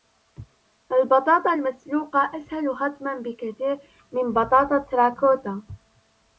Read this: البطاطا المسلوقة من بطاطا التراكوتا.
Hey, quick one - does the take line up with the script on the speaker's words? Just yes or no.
no